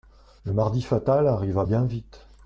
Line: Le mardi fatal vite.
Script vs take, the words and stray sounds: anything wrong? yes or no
yes